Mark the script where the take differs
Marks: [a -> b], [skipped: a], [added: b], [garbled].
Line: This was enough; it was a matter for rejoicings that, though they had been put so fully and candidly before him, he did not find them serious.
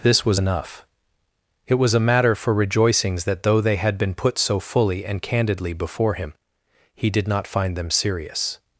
This was enough; it was a matter for rejoicings that, though they had been put so fully and candidly before him, he did not find them serious.